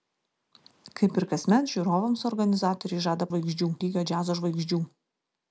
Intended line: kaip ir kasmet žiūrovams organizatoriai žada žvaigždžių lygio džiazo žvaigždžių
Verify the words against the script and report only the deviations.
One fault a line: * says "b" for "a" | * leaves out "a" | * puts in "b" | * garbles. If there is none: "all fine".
all fine